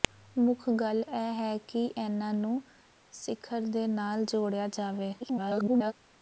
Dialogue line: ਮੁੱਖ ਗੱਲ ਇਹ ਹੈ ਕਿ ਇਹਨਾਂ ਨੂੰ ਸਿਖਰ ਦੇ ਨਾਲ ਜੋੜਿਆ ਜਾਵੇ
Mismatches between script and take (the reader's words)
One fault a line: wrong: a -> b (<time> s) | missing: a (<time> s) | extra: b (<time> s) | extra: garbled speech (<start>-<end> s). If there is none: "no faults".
extra: garbled speech (5.2-5.9 s)